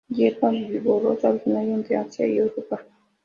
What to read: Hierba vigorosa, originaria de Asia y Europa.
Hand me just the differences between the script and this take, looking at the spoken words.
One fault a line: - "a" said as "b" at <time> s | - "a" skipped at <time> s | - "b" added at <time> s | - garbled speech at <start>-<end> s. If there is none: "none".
none